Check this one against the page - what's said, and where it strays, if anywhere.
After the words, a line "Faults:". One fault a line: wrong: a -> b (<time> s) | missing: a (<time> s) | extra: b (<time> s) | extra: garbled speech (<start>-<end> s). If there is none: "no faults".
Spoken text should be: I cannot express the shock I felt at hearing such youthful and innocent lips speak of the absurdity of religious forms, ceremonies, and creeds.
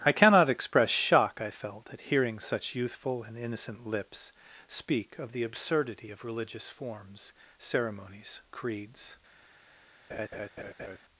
I cannot express shock I felt at hearing such youthful and innocent lips speak of the absurdity of religious forms, ceremonies, creeds.
Faults:
missing: the (0.9 s)
missing: and (8.4 s)